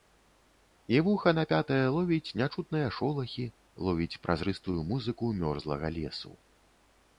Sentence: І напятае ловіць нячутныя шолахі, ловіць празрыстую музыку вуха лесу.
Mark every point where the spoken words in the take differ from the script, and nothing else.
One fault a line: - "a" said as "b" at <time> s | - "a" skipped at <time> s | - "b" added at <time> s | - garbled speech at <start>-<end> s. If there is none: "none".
- "вуха" added at 1.1 s
- "вуха" said as "мёрзлага" at 5.5 s